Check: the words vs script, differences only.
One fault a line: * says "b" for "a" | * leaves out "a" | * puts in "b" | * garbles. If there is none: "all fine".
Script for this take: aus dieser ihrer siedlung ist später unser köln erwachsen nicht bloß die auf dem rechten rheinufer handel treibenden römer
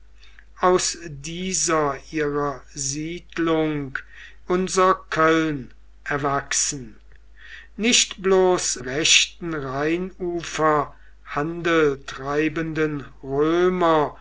* leaves out "ist später"
* leaves out "die auf dem"